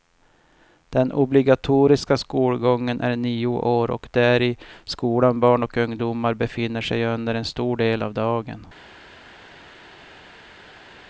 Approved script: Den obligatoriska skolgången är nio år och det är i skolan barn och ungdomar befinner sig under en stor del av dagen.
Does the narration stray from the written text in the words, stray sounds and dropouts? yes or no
no